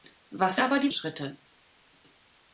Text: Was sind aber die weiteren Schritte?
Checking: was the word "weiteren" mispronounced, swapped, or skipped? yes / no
yes